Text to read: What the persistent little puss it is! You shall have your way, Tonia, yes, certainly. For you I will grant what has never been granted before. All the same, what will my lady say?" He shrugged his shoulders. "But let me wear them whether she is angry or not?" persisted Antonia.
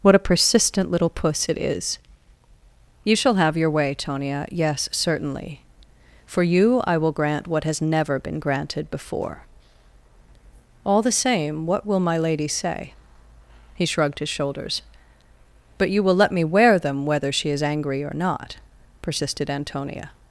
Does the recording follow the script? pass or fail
fail